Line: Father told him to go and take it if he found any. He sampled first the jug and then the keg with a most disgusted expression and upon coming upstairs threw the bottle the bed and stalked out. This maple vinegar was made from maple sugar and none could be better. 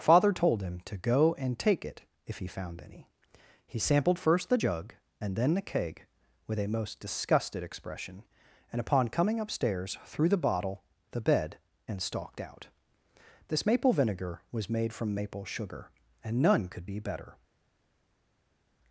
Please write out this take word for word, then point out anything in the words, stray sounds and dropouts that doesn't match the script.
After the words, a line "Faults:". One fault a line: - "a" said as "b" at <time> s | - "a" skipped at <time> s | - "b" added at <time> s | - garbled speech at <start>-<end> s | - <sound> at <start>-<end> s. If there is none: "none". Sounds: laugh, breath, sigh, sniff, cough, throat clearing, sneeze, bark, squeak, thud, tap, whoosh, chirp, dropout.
Father told him to go and take it if he found any. He sampled first the jug and then the keg with a most disgusted expression and upon coming upstairs threw the bottle the bed and stalked out. This maple vinegar was made from maple sugar and none could be better.
Faults:
none